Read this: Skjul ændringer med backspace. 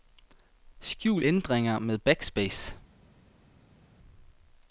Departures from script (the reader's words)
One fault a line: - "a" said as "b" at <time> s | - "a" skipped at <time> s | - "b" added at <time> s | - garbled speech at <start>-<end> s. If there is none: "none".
none